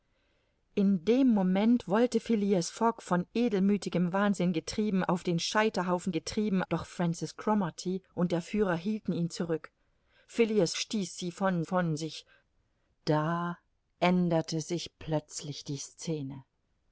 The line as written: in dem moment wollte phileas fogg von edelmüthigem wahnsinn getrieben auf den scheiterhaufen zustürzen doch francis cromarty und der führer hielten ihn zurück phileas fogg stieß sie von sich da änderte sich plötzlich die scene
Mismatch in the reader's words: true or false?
true